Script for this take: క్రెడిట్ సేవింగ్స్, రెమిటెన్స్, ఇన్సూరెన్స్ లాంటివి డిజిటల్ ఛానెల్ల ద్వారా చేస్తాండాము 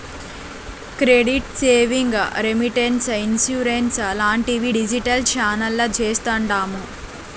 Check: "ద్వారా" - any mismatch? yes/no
yes